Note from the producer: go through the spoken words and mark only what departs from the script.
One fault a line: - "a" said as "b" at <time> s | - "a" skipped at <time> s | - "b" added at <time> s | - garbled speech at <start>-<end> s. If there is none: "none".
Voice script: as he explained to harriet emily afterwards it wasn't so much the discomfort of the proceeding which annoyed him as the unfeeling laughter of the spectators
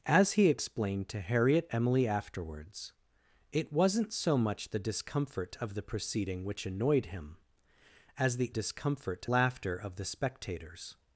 - "unfeeling" said as "discomfort" at 8.5 s